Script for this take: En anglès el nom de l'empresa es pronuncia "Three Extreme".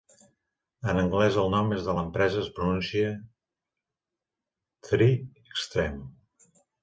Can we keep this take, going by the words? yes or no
yes